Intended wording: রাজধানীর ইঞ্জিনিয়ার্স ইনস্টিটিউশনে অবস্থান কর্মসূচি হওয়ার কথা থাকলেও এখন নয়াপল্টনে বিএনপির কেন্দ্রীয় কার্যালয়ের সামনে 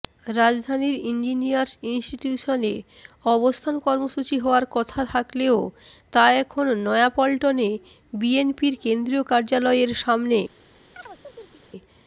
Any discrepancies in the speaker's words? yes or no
yes